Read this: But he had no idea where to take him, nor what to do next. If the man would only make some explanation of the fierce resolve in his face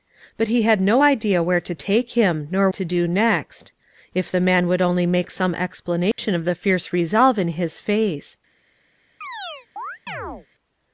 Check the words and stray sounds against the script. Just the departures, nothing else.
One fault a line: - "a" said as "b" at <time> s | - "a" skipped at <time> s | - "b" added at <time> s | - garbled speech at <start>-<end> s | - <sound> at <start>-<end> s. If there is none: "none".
- "what" skipped at 2.7 s
- dropout at 6.1-6.2 s
- chirp at 9.2-10.5 s